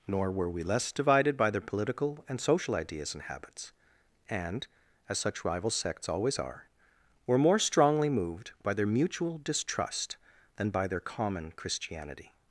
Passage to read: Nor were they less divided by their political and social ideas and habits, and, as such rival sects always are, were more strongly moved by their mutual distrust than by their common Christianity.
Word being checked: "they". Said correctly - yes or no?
no